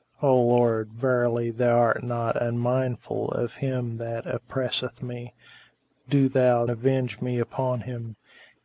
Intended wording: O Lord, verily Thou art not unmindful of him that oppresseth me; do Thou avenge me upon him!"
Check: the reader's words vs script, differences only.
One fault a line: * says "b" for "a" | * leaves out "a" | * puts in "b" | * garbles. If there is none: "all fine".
all fine